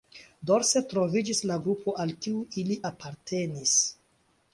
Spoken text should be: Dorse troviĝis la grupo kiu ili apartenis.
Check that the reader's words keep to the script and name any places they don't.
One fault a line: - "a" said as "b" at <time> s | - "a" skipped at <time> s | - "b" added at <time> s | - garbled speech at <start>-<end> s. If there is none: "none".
- "al" added at 2.0 s